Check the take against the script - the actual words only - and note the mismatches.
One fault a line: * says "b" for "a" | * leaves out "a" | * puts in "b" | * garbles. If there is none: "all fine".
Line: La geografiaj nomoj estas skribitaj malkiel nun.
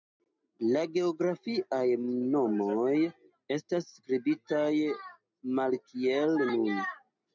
all fine